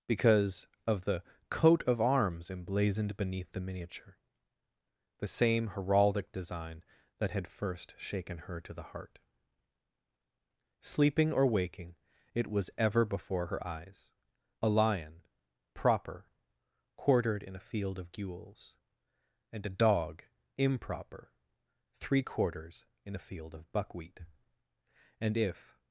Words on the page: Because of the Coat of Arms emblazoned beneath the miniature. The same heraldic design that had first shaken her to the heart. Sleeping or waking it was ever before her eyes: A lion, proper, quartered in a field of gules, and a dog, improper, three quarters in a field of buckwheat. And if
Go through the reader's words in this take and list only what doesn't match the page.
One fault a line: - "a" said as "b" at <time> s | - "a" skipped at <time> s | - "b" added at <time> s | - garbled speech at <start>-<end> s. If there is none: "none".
none